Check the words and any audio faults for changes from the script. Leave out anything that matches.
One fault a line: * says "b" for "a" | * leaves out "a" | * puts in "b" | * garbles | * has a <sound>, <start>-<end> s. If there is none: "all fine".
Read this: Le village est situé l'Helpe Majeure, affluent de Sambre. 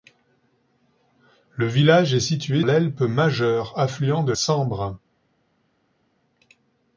all fine